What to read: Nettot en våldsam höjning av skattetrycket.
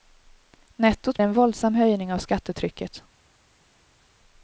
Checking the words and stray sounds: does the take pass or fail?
pass